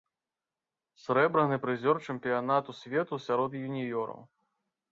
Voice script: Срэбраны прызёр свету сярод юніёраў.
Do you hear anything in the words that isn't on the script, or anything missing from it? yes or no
yes